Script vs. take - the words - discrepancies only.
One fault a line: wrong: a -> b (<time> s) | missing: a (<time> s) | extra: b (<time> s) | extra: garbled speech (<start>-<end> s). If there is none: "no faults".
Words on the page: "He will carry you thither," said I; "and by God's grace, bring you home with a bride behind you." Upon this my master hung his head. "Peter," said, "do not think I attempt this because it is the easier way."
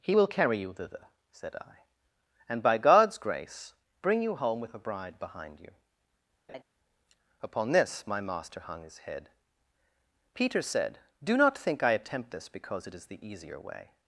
no faults